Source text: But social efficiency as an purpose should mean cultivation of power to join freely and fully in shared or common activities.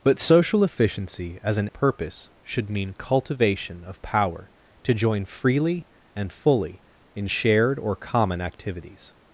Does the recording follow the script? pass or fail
pass